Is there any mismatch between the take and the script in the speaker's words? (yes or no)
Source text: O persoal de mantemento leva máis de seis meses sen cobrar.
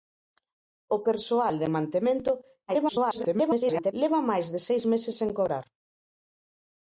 yes